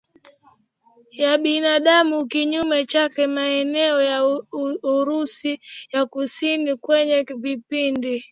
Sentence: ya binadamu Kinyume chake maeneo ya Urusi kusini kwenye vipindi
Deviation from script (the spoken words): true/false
true